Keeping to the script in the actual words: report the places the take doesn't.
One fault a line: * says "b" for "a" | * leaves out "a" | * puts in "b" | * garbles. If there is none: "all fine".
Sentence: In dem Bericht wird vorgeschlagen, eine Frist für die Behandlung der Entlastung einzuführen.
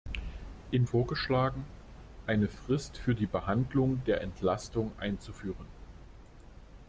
* leaves out "dem Bericht wird"